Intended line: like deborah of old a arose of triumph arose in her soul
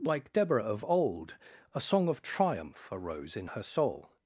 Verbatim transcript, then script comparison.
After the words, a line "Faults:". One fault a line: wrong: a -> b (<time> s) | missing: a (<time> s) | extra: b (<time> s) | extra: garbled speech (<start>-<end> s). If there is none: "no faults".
like deborah of old a song of triumph arose in her soul
Faults:
wrong: arose -> song (1.8 s)